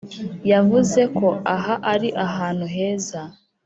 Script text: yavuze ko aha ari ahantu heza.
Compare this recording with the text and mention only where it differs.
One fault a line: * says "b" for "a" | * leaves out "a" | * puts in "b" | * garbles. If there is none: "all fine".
all fine